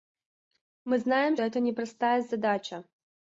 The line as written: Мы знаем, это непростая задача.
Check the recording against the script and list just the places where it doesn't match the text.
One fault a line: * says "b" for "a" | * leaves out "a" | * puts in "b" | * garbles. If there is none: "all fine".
all fine